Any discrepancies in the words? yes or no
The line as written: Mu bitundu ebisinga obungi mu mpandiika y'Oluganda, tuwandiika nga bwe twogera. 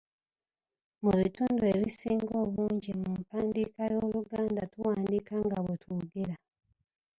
no